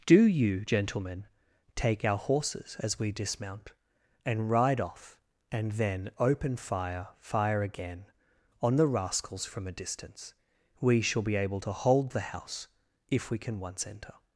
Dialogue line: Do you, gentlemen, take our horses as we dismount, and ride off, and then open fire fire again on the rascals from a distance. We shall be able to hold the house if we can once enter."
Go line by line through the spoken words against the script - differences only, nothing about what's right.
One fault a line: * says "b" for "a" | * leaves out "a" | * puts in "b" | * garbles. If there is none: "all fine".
all fine